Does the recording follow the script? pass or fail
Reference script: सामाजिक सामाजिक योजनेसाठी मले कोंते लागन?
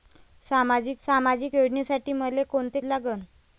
pass